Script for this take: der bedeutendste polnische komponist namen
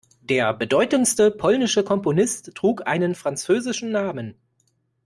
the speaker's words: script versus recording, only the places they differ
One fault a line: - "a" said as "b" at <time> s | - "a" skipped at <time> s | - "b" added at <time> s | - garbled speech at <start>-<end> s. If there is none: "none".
- "trug einen französischen" added at 2.5 s